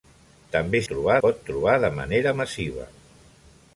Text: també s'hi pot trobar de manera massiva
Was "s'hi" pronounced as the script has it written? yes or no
no